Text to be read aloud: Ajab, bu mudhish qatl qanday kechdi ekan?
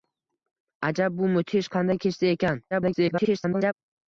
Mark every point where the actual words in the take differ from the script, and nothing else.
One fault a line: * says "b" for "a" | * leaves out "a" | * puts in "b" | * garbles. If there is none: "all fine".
* leaves out "qatl"
* garbles